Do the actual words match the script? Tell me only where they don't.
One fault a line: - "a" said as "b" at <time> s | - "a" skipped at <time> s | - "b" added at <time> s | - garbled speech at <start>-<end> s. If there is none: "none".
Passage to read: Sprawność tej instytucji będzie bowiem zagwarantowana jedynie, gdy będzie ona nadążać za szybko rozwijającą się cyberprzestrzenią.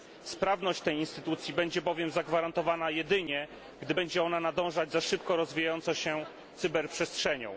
none